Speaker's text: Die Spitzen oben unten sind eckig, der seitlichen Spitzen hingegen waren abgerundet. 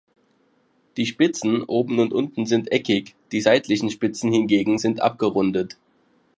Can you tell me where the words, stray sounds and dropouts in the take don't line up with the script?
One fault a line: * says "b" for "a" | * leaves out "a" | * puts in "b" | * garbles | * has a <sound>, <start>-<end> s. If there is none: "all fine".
* puts in "und"
* says "die" for "der"
* says "sind" for "waren"